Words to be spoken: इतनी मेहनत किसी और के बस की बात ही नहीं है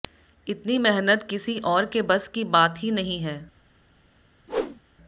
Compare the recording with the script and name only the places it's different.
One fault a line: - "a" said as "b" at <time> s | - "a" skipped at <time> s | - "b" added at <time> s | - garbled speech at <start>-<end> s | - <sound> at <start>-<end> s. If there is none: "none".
- whoosh at 4.5-4.8 s